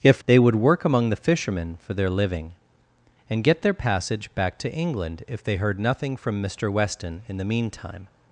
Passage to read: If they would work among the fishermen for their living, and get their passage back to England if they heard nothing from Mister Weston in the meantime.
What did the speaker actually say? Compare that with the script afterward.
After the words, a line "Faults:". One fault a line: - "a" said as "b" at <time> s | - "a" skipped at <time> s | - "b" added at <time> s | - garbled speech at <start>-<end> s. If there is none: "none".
If they would work among the fishermen for their living, and get their passage back to England if they heard nothing from Mister Weston in the meantime.
Faults:
none